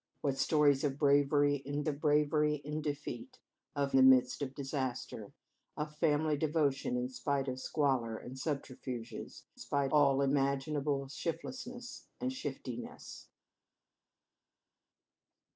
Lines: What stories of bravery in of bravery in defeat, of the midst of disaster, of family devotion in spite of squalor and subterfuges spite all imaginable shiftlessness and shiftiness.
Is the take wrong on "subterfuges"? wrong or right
right